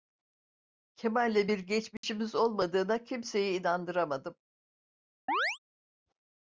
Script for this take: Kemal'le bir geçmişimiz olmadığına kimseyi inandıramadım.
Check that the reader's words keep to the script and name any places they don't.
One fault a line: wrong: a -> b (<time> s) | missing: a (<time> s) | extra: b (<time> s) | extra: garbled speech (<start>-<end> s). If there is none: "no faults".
no faults